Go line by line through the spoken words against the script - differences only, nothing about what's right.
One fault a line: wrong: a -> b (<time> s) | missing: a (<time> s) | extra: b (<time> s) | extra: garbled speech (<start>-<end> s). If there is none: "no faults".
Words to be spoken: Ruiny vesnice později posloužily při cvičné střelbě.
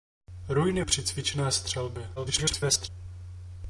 missing: vesnice později posloužily (0.8 s)
extra: garbled speech (2.2-2.9 s)